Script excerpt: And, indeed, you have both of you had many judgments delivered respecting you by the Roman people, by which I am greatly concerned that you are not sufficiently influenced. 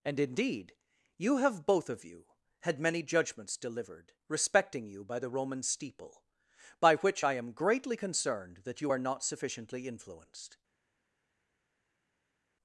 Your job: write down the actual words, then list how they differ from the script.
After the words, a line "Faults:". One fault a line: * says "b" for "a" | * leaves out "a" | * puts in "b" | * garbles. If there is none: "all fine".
And, indeed, you have both of you had many judgments delivered respecting you by the Roman steeple, by which I am greatly concerned that you are not sufficiently influenced.
Faults:
* says "steeple" for "people"